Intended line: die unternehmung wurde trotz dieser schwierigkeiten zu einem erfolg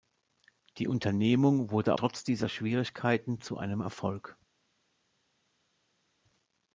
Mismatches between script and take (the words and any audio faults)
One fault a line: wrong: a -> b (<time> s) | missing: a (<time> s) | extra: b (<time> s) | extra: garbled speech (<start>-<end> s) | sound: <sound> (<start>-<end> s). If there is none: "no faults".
no faults